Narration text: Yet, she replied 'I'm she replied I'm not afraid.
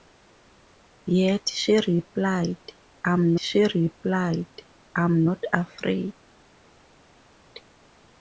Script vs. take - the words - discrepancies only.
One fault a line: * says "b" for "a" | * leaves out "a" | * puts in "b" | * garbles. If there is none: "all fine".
all fine